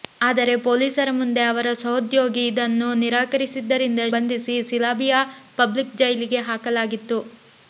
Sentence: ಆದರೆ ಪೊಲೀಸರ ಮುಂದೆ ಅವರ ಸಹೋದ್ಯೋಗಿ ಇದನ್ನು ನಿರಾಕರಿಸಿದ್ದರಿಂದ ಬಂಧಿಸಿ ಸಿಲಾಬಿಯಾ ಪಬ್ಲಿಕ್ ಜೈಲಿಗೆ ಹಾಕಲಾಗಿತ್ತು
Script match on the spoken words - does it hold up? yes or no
yes